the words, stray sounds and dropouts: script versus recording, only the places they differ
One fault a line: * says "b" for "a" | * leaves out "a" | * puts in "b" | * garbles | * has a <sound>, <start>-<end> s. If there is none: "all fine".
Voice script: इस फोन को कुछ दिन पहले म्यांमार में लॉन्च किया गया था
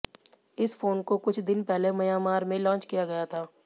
all fine